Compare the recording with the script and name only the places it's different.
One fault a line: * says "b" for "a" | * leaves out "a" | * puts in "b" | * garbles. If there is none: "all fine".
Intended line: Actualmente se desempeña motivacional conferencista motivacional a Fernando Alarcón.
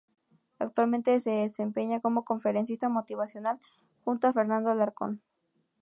* says "como" for "motivacional"
* puts in "junto"